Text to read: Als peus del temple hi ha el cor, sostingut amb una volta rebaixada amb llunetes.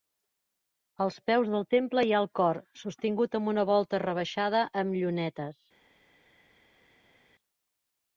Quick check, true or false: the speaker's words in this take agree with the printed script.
true